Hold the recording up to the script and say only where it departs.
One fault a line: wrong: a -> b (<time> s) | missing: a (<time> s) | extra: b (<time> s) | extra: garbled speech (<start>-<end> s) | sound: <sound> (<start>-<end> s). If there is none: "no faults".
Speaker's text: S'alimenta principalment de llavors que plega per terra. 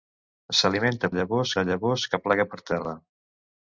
wrong: principalment -> llavors (1.2 s)